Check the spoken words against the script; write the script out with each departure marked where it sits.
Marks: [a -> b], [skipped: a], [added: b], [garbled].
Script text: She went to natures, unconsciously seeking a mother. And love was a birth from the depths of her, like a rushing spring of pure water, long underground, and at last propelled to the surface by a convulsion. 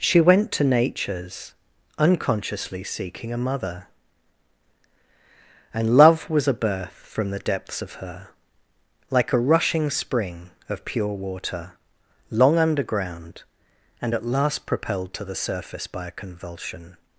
She went to natures, unconsciously seeking a mother. And love was a birth from the depths of her, like a rushing spring of pure water, long underground, and at last propelled to the surface by a convulsion.